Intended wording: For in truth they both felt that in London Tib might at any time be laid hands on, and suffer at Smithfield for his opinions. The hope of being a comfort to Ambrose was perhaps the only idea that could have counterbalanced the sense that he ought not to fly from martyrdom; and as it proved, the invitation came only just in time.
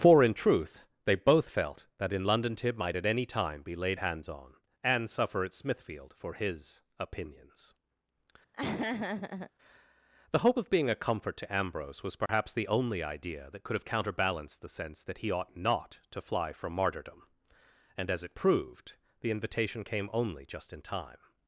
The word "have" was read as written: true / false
true